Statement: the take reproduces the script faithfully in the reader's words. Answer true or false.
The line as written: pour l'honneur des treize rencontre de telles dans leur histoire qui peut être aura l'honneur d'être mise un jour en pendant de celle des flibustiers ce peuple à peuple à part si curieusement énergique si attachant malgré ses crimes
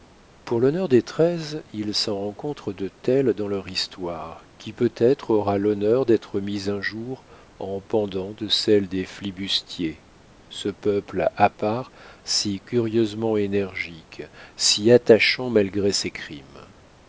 false